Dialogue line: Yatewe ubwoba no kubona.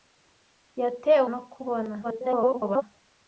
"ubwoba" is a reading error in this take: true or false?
true